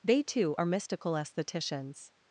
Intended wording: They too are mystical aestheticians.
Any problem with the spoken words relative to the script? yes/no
no